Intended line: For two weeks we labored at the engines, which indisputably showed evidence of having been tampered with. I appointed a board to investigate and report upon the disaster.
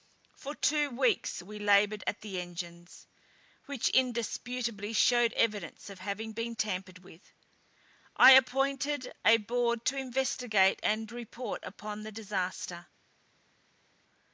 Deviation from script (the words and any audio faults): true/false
false